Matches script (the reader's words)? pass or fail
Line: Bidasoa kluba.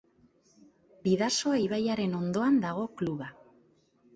fail